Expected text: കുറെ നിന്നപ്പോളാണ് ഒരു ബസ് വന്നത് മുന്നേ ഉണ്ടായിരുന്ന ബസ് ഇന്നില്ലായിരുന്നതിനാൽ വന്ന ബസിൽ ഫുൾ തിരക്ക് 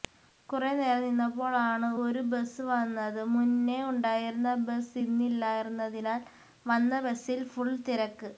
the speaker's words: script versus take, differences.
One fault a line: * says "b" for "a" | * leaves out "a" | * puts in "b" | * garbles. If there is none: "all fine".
* puts in "നേരം"